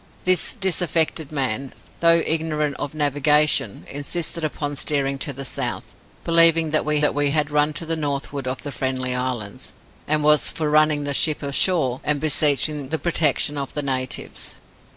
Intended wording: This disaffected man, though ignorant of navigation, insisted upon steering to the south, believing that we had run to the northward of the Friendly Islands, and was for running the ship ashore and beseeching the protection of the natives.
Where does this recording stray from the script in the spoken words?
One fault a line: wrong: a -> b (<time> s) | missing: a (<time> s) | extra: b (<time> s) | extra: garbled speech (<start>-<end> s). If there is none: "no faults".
extra: that we (7.0 s)